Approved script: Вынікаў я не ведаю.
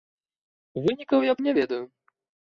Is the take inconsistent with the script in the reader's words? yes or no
no